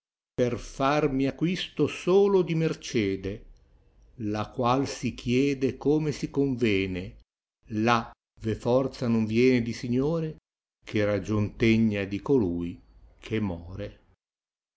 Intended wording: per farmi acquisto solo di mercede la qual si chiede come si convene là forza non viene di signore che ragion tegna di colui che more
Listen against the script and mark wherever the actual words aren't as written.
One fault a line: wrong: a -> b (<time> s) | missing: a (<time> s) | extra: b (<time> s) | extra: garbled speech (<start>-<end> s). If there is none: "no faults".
extra: ve (8.4 s)